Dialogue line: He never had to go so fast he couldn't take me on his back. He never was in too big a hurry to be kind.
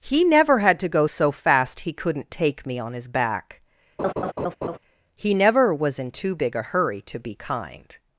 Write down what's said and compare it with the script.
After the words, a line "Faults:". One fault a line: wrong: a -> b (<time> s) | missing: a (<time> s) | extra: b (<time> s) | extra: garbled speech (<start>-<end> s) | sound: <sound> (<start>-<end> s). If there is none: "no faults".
He never had to go so fast he couldn't take me on his back. He never was in too big a hurry to be kind.
Faults:
sound: laugh (4.0-4.8 s)